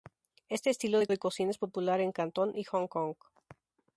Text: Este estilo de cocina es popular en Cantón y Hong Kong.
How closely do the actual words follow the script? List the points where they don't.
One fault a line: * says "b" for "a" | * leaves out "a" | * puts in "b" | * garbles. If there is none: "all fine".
* puts in "de"